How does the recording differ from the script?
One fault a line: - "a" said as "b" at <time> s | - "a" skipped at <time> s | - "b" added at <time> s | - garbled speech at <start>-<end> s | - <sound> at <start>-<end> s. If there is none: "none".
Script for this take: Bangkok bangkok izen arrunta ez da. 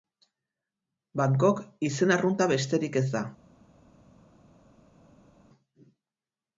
- "bangkok" skipped at 1.6 s
- "besterik" added at 2.6 s